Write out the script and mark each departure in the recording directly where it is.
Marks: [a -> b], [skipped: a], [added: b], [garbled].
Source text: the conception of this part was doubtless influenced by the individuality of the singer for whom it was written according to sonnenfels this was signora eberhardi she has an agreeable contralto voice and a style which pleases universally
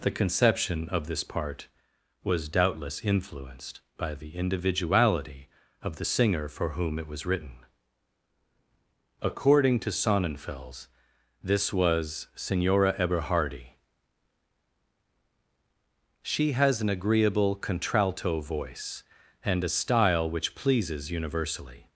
the conception of this part was doubtless influenced by the individuality of the singer for whom it was written according to sonnenfels this was signora eberhardi she has an agreeable contralto voice and a style which pleases universally